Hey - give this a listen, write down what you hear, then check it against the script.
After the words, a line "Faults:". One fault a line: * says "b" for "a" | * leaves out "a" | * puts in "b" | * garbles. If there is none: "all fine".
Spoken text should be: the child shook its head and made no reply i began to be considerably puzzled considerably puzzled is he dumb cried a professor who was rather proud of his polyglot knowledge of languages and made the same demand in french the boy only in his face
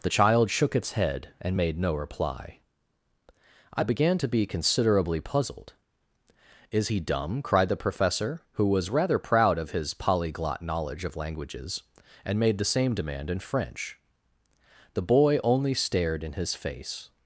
the child shook its head and made no reply i began to be considerably puzzled is he dumb cried the professor who was rather proud of his polyglot knowledge of languages and made the same demand in french the boy only stared in his face
Faults:
* leaves out "considerably puzzled"
* says "the" for "a"
* puts in "stared"